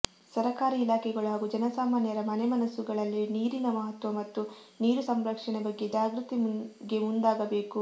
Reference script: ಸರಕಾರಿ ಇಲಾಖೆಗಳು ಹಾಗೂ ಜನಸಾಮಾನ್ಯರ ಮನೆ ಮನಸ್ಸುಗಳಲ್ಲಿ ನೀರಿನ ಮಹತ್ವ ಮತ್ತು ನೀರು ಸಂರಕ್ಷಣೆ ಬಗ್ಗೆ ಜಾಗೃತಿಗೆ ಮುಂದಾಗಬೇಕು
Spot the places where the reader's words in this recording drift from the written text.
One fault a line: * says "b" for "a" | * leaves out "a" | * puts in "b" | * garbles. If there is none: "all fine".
all fine